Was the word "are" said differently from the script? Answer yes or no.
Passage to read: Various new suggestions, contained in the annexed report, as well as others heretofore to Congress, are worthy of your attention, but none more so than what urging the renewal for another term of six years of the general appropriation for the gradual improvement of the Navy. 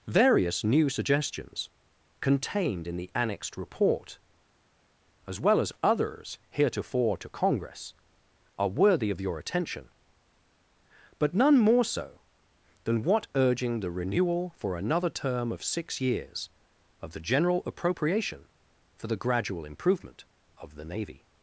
no